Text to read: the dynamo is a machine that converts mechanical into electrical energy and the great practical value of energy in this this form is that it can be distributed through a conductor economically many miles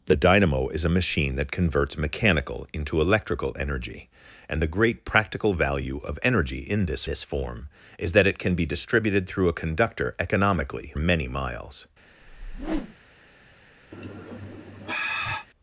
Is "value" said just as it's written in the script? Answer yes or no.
yes